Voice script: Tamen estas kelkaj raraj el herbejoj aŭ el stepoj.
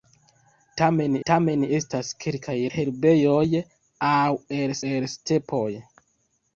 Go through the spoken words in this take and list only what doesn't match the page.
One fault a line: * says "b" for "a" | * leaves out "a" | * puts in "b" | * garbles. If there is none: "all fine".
* puts in "tamen"
* leaves out "raraj el"
* puts in "el"